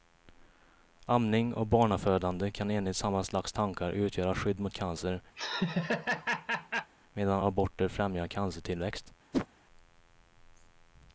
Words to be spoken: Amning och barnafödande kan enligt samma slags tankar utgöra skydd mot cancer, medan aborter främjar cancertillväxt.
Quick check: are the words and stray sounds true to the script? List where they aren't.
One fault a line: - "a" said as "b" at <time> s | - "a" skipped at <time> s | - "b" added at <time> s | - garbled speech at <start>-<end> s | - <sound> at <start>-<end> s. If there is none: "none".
- laugh at 5.4-6.9 s
- whoosh at 9.3-9.5 s